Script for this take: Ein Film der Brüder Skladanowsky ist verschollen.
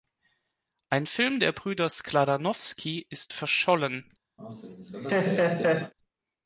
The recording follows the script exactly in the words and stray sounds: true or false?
false